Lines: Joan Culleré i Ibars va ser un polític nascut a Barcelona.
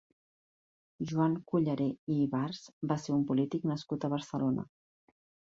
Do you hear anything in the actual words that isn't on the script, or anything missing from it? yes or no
no